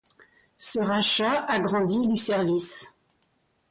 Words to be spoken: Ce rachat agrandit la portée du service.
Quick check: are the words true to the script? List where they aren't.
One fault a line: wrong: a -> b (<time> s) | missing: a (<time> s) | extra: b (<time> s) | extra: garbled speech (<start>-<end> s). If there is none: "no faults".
missing: la portée (2.1 s)